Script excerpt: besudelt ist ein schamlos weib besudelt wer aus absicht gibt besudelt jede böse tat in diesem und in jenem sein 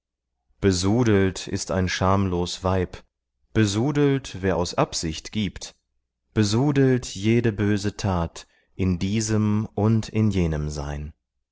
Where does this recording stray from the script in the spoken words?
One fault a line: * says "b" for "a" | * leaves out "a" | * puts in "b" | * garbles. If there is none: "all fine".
all fine